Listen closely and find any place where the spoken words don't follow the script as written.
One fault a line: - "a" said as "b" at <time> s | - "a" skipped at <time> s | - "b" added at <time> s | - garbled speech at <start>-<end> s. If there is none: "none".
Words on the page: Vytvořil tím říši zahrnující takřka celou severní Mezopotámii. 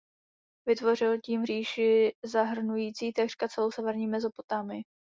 none